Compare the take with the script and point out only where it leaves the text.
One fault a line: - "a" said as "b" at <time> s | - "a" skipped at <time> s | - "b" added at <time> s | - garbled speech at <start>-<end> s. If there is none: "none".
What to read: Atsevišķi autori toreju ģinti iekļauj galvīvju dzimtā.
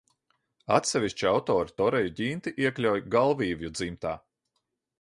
none